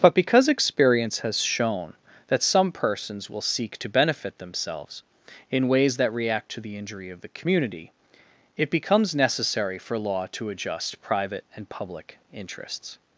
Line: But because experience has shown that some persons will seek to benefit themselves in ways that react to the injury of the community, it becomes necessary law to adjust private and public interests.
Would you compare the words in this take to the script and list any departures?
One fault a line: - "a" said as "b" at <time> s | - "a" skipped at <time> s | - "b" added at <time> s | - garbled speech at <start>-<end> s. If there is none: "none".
- "for" added at 9.8 s